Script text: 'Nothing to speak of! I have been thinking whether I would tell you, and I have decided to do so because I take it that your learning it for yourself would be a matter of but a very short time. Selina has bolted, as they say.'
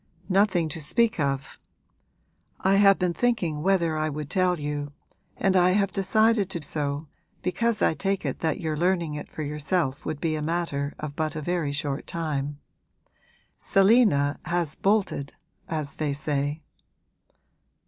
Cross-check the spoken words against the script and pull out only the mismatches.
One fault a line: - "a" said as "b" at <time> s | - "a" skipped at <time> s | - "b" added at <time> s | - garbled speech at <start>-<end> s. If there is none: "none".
- "do" skipped at 6.6 s